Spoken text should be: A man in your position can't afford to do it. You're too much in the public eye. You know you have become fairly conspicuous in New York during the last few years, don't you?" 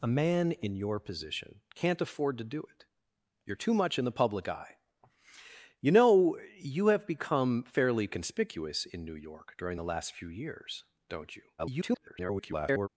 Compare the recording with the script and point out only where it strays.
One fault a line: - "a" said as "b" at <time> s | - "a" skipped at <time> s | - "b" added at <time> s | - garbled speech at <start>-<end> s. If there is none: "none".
- garbled speech at 11.6-12.9 s